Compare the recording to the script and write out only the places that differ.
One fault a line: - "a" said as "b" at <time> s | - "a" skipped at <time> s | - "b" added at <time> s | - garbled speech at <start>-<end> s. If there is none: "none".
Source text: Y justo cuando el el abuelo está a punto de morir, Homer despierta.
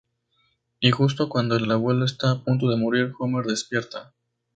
none